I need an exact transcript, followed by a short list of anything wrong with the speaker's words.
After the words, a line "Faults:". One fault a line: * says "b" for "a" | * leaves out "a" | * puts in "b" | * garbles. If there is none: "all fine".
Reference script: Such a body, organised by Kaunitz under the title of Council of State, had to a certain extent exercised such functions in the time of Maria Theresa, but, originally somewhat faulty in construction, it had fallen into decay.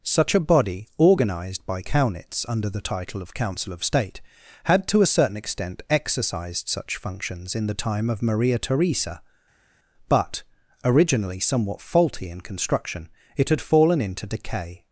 Such a body, organised by Kaunitz under the title of Council of State, had to a certain extent exercised such functions in the time of Maria Theresa, but, originally somewhat faulty in construction, it had fallen into decay.
Faults:
all fine